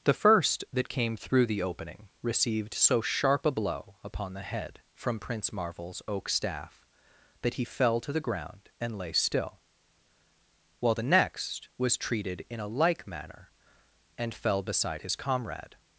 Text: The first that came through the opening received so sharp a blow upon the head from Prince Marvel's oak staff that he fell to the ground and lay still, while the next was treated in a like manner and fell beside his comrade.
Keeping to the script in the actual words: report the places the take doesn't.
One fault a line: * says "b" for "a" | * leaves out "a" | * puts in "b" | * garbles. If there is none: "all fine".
all fine